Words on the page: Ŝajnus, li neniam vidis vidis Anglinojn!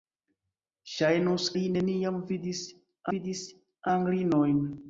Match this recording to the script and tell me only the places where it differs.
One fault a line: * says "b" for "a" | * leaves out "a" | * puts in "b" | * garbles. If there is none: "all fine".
all fine